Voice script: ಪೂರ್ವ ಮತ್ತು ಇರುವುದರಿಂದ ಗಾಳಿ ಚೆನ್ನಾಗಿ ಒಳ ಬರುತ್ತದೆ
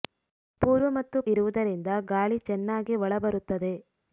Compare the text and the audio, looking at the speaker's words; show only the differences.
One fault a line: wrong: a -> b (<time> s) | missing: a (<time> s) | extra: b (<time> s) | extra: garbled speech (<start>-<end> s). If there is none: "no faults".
no faults